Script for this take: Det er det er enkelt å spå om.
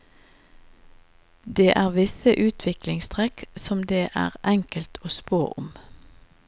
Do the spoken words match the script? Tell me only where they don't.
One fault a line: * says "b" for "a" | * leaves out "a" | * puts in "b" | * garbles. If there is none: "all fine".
* puts in "visse utviklingstrekk som"